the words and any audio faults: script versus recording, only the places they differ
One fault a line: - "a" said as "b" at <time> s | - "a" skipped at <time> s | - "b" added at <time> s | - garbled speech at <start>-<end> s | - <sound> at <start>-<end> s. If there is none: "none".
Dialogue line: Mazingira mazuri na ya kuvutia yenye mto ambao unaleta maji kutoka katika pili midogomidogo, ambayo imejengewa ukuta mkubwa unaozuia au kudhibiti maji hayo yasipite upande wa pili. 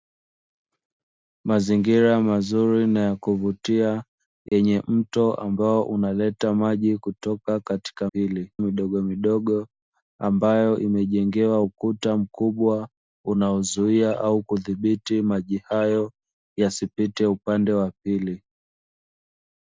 - dropout at 4.5-4.5 s